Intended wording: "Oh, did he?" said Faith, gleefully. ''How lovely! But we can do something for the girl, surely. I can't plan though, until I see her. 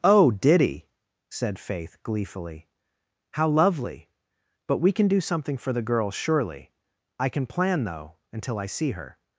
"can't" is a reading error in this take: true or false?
true